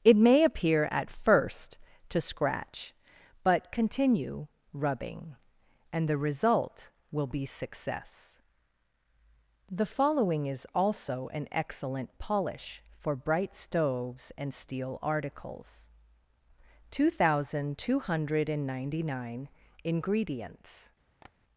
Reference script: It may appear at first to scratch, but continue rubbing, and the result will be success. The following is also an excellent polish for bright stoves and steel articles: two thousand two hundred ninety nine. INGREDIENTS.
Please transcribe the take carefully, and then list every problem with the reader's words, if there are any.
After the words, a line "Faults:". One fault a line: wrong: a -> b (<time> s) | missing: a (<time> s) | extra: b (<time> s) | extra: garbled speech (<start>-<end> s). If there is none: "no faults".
It may appear at first to scratch, but continue rubbing, and the result will be success. The following is also an excellent polish for bright stoves and steel articles: two thousand two hundred ninety nine. INGREDIENTS.
Faults:
no faults